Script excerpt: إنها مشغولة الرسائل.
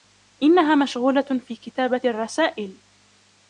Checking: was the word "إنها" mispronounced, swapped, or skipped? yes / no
no